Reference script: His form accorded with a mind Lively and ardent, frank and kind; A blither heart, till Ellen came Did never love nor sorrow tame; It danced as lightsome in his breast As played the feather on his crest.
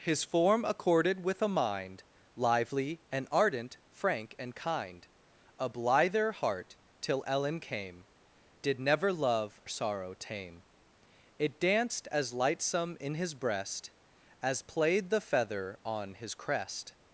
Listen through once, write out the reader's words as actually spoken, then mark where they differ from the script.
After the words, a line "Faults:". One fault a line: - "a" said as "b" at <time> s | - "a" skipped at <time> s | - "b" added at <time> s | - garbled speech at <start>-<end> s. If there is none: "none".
His form accorded with a mind Lively and ardent, frank and kind; A blither heart, till Ellen came Did never love sorrow tame; It danced as lightsome in his breast As played the feather on his crest.
Faults:
- "nor" skipped at 9.6 s